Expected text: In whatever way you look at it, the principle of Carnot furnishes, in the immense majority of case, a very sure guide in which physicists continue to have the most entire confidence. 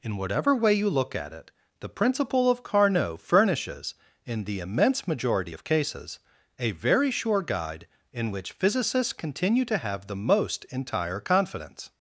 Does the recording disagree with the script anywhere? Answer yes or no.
yes